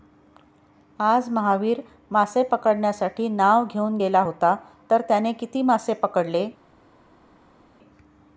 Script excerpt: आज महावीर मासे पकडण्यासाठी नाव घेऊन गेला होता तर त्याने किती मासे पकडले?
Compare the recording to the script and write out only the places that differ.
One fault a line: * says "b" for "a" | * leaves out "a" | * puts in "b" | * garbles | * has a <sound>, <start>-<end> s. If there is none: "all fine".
all fine